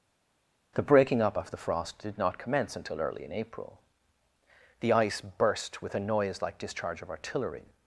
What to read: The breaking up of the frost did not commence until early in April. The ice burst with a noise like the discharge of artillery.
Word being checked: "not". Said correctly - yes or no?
yes